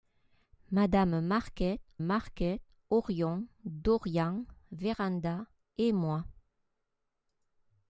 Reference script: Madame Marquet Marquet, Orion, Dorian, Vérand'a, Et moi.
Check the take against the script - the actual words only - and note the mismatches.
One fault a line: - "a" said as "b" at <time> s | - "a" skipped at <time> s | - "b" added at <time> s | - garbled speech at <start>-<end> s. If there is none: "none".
none